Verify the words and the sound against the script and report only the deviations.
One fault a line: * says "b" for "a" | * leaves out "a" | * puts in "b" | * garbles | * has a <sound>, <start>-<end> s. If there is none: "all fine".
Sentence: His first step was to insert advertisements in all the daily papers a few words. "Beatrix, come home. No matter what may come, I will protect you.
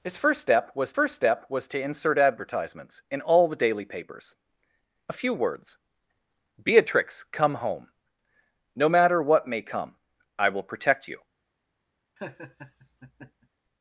* puts in "first step was"
* has a laugh, 12.2-13.5 s